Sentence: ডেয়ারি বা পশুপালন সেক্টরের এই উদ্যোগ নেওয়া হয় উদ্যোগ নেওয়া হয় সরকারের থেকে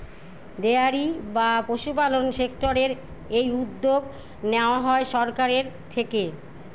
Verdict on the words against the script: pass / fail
fail